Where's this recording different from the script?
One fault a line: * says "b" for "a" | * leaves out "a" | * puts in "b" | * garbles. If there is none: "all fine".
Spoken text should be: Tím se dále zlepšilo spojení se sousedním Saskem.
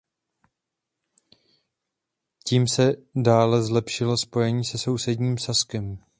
all fine